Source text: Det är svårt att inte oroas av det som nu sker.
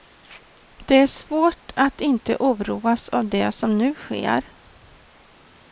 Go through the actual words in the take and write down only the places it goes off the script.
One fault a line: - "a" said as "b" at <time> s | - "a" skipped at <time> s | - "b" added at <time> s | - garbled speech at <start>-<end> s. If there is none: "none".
none